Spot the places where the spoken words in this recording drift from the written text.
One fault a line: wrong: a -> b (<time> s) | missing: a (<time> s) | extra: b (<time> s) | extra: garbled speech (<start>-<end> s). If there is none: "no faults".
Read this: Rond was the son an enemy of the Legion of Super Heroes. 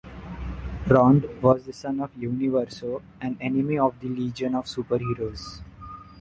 extra: of Universo (2.0 s)